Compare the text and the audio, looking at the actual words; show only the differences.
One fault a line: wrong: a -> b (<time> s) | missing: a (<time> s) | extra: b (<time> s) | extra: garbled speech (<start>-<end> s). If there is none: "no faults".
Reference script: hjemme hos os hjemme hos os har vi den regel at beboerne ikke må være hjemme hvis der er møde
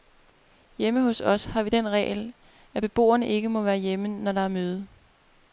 missing: hjemme hos os (1.4 s)
wrong: hvis -> når (4.1 s)